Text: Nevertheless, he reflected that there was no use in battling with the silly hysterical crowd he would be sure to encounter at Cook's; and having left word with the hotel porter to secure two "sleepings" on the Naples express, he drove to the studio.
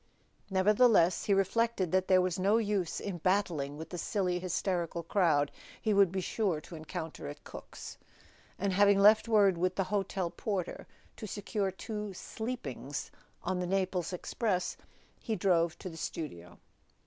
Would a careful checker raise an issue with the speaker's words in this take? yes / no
no